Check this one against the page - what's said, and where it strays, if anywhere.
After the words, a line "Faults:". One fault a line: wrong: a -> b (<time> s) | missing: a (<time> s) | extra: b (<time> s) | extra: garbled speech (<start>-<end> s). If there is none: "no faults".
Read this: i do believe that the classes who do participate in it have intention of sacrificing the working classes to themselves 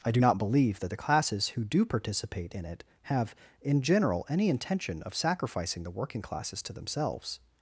i do not believe that the classes who do participate in it have in general any intention of sacrificing the working classes to themselves
Faults:
extra: not (0.2 s)
extra: in general any (3.6 s)